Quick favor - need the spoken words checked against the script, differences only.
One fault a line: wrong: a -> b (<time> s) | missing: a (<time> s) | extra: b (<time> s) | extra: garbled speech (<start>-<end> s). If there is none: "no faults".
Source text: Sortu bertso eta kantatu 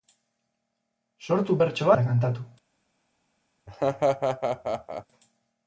no faults